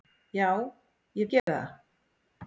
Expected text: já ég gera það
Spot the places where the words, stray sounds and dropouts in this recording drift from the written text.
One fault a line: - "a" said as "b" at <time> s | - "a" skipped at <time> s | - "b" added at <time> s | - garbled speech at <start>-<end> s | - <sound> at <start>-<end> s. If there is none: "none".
- dropout at 1.4-1.5 s